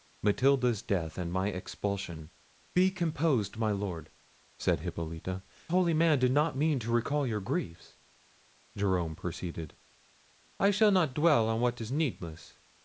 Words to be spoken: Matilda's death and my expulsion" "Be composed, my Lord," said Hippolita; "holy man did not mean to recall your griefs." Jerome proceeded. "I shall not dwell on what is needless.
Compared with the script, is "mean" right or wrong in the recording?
right